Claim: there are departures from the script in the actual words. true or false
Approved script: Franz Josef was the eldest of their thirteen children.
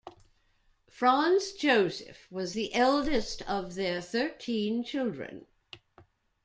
false